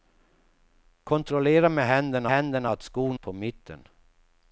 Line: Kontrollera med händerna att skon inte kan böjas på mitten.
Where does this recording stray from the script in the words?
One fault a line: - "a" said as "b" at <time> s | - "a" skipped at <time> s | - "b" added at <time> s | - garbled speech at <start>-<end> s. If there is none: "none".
- "händerna" added at 2.3 s
- "inte kan böjas" skipped at 3.2 s